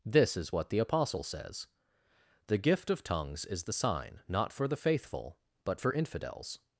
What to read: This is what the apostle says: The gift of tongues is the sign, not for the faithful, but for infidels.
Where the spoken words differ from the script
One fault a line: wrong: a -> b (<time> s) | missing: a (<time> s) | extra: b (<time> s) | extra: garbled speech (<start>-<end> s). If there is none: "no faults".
no faults